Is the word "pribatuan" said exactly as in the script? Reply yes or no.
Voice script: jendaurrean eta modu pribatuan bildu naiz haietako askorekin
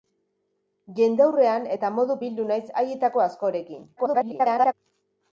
no